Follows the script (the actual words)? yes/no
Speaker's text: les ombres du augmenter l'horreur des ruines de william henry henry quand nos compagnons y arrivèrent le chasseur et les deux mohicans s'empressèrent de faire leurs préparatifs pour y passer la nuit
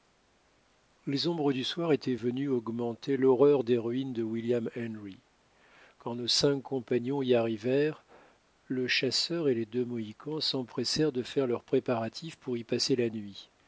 no